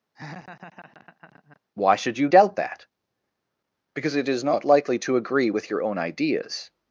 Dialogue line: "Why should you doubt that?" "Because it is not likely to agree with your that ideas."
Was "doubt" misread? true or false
false